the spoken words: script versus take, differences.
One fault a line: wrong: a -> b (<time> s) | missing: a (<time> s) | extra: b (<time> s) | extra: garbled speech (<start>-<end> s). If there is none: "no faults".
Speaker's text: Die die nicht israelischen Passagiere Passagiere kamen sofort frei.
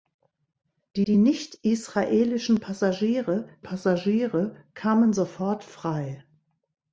no faults